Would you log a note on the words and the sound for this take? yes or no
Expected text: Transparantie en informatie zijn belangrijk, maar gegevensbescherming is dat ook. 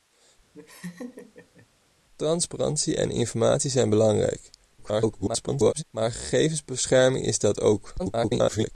yes